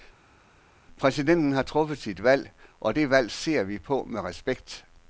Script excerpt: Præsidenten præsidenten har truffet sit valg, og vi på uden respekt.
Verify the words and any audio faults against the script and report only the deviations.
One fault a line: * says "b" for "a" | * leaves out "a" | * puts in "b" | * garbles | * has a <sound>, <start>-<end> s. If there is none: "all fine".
* leaves out "præsidenten"
* puts in "det valg ser"
* says "med" for "uden"